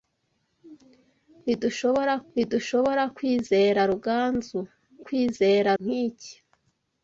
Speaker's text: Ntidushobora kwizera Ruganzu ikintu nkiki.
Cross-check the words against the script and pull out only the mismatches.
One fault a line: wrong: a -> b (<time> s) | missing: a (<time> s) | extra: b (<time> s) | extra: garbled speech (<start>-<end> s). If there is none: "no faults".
extra: ntidushobora (2.3 s)
wrong: ikintu -> kwizera (5.1 s)